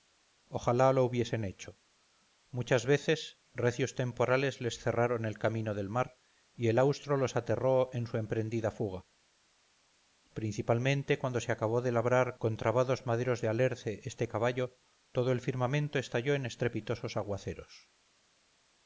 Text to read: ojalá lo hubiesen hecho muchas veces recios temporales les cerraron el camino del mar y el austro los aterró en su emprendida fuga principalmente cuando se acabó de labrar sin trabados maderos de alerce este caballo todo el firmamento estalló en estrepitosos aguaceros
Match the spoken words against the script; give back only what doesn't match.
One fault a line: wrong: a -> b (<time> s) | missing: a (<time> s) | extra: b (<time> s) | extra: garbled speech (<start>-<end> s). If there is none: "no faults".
wrong: sin -> con (12.4 s)